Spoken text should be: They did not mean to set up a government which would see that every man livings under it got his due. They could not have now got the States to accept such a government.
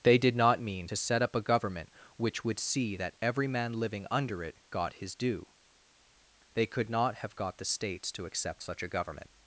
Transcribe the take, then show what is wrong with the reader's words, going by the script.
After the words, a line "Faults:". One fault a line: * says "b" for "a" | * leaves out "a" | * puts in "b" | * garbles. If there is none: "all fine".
They did not mean to set up a government which would see that every man living under it got his due. They could not have got the States to accept such a government.
Faults:
* says "living" for "livings"
* leaves out "now"